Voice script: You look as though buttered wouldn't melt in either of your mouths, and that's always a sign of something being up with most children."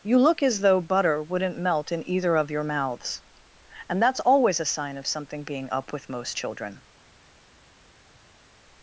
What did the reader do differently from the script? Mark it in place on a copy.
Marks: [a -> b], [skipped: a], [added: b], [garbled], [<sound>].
You look as though [buttered -> butter] wouldn't melt in either of your mouths, and that's always a sign of something being up with most children."